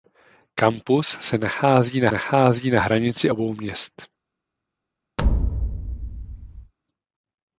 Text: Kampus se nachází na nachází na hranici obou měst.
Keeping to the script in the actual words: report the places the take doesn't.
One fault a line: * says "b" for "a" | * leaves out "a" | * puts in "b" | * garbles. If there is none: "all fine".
all fine